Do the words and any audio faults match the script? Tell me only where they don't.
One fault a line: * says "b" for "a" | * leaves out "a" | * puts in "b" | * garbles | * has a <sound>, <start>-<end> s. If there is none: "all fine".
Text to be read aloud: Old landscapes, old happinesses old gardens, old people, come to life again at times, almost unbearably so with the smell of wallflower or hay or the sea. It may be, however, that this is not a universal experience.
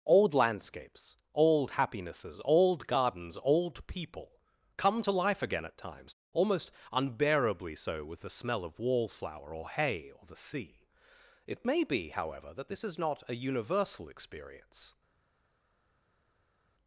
all fine